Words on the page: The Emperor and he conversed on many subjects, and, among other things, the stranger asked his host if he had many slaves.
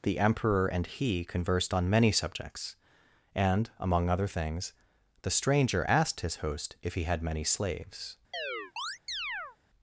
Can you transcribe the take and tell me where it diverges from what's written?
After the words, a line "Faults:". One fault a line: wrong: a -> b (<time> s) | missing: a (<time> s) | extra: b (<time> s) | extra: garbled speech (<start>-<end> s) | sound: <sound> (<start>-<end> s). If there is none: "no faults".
The Emperor and he conversed on many subjects, and, among other things, the stranger asked his host if he had many slaves.
Faults:
sound: chirp (8.3-9.6 s)